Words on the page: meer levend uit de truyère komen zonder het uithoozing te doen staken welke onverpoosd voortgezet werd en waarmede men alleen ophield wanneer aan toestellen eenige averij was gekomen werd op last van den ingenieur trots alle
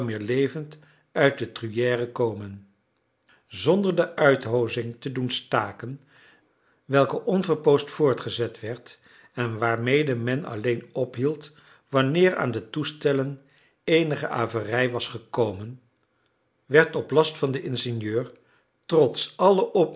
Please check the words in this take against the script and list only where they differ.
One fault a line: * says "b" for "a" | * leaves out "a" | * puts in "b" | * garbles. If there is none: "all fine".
* says "de" for "het"
* puts in "de"